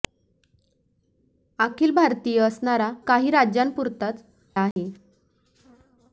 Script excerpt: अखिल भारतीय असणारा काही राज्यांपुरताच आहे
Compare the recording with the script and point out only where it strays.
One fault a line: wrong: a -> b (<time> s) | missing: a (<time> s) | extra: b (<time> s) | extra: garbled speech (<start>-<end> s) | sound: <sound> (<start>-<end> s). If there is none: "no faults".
sound: dropout (4.7-4.8 s)